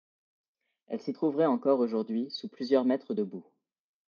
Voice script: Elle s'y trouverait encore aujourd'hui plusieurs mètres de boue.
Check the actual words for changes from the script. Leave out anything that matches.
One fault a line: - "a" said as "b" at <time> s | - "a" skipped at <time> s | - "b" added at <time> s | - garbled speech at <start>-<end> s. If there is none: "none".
- "sous" added at 2.3 s